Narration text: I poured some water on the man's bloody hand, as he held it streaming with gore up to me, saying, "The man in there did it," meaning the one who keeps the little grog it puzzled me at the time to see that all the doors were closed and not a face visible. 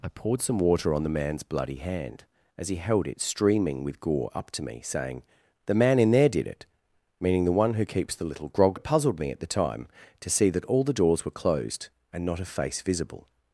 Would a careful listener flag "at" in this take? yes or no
no